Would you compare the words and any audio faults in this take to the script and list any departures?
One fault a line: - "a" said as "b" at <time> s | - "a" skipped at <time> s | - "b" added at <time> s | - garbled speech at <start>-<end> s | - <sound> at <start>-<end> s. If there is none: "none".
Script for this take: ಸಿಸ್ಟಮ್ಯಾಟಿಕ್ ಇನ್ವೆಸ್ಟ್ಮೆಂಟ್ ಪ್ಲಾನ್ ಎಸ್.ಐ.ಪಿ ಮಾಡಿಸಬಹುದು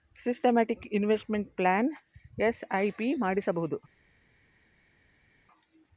none